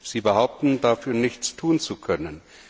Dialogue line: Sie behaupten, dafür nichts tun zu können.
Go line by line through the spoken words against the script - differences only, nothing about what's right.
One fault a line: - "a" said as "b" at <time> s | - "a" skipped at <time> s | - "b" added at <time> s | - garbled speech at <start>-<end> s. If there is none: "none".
none